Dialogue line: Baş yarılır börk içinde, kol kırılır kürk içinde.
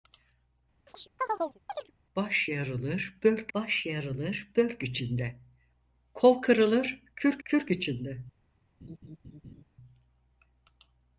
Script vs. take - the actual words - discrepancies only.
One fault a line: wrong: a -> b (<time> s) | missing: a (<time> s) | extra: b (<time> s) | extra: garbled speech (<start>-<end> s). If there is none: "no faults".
extra: baş yarılır börk (3.5 s)
extra: kürk (7.4 s)